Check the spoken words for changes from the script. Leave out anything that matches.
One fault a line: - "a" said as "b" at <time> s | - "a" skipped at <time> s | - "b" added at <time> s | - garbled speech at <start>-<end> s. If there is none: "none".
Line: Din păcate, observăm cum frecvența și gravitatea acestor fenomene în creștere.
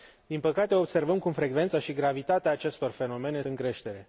none